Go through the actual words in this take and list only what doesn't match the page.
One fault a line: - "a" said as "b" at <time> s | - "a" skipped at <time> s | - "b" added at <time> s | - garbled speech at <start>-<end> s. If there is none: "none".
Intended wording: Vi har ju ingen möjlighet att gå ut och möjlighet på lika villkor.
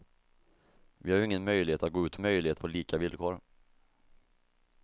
none